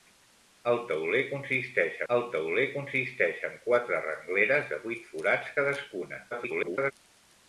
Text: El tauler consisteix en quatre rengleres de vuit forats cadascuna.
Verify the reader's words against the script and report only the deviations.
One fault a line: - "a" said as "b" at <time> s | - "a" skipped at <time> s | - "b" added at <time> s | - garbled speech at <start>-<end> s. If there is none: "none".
- "el tauler consisteix" added at 2.1 s
- garbled speech at 6.3-6.9 s